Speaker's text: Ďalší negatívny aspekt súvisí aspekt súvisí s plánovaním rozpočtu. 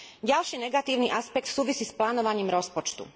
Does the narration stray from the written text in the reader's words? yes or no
yes